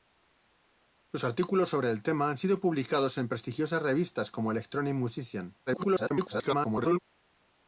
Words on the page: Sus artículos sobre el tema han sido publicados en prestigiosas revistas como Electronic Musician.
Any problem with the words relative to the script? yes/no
yes